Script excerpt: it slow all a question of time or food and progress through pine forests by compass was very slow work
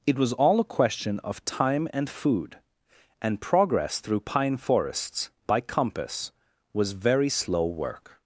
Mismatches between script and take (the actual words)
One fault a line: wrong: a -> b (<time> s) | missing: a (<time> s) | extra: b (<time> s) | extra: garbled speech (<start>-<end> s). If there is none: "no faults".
wrong: slow -> was (0.2 s)
wrong: or -> and (1.9 s)